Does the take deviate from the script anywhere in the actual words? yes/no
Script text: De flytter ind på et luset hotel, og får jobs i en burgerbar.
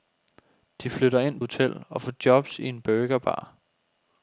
yes